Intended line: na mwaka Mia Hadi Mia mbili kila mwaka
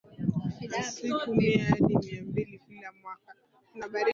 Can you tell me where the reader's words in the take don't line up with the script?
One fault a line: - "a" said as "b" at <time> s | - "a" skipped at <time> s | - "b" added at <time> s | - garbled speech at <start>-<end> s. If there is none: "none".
- "mwaka" said as "siku" at 0.8 s